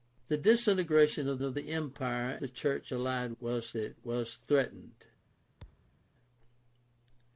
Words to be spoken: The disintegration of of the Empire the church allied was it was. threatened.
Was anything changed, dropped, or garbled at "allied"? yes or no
no